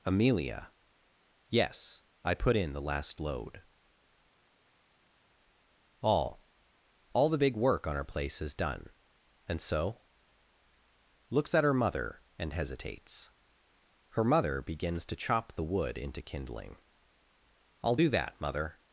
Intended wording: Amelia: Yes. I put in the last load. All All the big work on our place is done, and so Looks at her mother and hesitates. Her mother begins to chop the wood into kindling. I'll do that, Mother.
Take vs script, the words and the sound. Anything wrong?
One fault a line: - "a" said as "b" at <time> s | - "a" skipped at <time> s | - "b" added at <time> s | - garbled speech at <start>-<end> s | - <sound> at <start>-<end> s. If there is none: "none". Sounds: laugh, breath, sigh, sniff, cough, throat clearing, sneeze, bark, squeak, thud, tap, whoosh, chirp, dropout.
none